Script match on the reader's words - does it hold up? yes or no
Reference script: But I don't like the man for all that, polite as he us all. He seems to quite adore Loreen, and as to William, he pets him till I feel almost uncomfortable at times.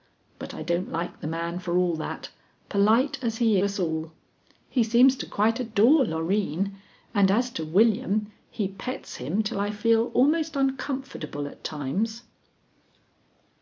yes